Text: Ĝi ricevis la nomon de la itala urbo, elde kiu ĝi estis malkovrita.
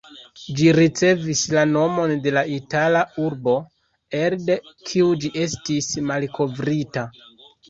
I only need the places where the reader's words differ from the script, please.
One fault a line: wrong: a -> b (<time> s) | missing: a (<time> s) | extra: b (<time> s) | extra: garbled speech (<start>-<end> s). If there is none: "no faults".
no faults